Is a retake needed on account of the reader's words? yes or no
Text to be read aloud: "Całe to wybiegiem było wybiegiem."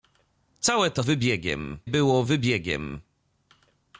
no